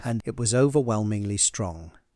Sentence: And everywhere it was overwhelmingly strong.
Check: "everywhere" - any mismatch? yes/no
yes